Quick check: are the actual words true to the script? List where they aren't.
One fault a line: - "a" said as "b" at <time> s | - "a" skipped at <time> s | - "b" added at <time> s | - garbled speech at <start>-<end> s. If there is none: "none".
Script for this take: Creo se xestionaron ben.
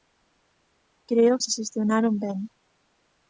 none